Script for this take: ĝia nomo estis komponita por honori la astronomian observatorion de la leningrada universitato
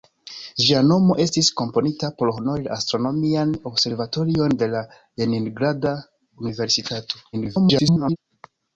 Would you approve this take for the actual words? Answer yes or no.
no